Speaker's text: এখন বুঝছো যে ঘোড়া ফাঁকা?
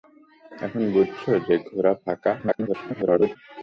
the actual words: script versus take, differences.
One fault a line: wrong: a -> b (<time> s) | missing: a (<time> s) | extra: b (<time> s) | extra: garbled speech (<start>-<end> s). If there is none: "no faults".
extra: garbled speech (2.4-3.4 s)